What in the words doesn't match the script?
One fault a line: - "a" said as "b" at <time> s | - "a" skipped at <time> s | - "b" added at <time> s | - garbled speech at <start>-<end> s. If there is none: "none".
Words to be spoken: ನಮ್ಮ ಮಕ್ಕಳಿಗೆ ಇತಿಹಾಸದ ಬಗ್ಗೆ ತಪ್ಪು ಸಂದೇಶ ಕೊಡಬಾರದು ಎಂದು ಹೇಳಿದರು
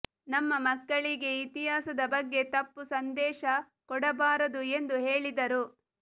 none